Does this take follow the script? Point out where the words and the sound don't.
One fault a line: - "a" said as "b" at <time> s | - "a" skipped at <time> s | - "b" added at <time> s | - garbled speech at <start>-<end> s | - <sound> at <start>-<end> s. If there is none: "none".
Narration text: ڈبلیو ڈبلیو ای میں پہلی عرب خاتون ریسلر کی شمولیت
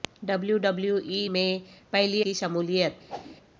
- "عرب خاتون ریسلر" skipped at 2.2 s
- whoosh at 3.1-3.4 s